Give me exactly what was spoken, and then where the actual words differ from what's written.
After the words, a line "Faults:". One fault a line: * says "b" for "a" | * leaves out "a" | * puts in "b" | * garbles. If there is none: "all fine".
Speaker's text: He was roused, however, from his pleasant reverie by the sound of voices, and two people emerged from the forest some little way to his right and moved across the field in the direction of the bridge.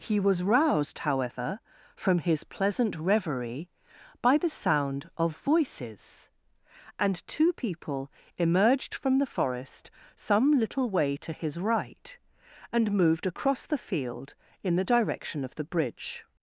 He was roused, however, from his pleasant reverie by the sound of voices, and two people emerged from the forest some little way to his right and moved across the field in the direction of the bridge.
Faults:
all fine